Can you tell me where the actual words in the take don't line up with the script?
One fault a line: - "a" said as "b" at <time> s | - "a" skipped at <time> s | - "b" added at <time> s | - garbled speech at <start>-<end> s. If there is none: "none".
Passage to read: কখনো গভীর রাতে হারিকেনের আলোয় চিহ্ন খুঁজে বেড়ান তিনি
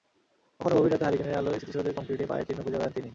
- "স্মৃতিসৌধের কংক্রিটে পায়ের" added at 1.6 s